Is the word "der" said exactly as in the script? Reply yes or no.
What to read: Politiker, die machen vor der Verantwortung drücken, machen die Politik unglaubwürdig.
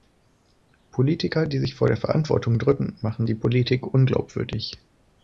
yes